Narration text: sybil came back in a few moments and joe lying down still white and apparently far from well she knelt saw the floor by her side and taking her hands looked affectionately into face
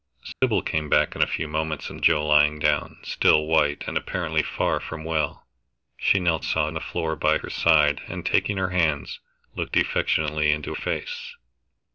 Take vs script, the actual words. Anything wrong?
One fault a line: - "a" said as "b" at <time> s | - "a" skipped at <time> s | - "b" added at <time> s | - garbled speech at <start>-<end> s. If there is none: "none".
none